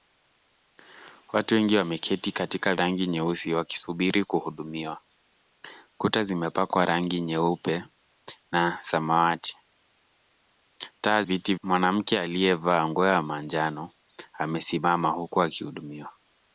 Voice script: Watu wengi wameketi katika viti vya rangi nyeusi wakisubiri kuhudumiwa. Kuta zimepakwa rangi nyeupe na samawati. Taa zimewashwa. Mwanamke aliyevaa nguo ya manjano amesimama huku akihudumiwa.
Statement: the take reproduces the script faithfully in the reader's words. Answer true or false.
false